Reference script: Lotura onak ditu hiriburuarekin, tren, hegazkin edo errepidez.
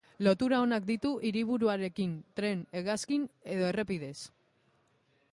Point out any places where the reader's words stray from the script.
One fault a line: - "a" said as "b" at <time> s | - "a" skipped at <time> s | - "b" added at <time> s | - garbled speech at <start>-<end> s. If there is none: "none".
none